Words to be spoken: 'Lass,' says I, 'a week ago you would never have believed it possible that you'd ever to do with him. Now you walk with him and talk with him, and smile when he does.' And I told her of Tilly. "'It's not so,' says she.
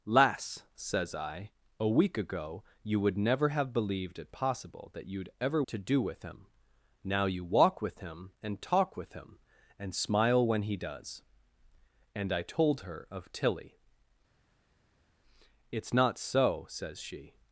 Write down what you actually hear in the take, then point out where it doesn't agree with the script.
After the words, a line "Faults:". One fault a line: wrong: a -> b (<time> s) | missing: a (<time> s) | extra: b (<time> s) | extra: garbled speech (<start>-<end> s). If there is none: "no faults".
'Lass,' says I, 'a week ago you would never have believed it possible that you'd ever to do with him. Now you walk with him and talk with him, and smile when he does.' And I told her of Tilly. "'It's not so,' says she.
Faults:
no faults